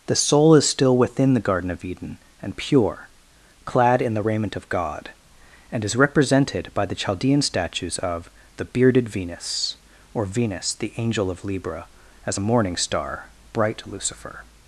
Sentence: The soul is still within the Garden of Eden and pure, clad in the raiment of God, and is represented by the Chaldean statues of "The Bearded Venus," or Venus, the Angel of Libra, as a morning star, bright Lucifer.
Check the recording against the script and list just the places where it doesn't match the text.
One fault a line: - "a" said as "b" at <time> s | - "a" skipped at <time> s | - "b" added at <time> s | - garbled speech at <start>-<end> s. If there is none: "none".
none